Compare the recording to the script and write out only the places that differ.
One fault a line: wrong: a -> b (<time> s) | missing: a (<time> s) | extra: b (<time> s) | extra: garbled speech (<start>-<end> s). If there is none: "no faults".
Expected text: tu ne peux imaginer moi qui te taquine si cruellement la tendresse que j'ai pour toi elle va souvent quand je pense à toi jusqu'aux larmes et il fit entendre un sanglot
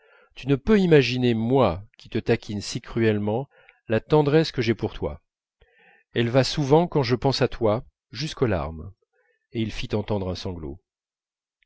no faults